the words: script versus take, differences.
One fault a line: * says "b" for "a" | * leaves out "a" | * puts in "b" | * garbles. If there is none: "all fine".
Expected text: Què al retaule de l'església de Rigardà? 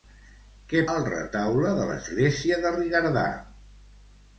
all fine